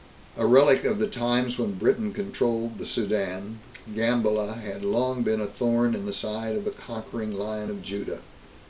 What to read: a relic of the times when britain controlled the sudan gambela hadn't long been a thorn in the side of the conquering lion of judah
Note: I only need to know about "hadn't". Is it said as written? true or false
false